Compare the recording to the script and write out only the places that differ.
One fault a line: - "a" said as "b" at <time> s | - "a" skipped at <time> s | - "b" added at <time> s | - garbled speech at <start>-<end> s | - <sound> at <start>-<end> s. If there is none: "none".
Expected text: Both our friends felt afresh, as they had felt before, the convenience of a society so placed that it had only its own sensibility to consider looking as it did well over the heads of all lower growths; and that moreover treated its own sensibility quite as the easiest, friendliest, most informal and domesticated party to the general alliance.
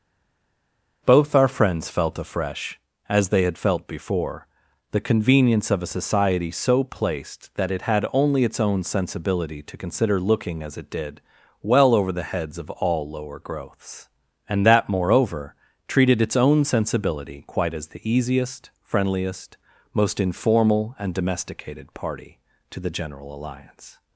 none